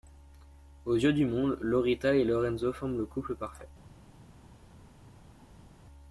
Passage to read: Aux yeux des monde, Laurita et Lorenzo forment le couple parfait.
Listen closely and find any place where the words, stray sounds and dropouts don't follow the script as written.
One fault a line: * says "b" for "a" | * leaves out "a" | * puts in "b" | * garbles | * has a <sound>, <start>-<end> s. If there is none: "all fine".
* says "du" for "des"